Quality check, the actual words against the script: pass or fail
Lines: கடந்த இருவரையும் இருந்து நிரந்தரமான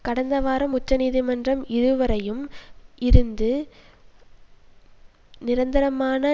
fail